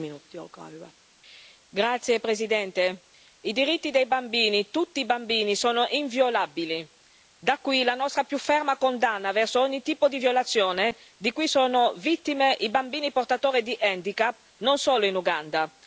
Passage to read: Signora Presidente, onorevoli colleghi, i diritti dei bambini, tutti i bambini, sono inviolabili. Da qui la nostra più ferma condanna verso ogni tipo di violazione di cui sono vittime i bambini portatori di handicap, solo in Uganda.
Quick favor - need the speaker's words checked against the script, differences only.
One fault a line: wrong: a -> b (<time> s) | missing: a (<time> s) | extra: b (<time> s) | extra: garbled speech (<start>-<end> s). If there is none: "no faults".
extra: non (14.6 s)